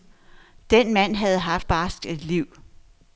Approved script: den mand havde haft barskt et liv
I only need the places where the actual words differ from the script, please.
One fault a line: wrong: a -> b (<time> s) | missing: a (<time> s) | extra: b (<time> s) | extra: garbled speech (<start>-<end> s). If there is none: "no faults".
no faults